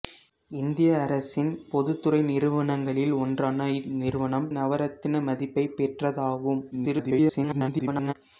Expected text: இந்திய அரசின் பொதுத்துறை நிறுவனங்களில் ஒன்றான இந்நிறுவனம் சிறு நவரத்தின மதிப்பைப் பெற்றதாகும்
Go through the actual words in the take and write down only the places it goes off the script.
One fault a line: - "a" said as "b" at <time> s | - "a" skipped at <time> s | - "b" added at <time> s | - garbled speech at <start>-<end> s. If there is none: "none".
- "சிறு" skipped at 4.5 s
- garbled speech at 6.7-8.1 s